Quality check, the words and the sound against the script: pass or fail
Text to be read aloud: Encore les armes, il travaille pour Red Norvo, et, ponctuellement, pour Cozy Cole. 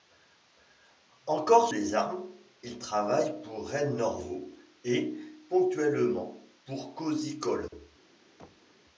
fail